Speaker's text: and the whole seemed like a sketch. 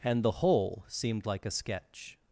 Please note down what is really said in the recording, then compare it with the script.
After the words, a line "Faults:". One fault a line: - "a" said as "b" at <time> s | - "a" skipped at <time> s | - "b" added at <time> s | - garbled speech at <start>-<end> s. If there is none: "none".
and the whole seemed like a sketch.
Faults:
none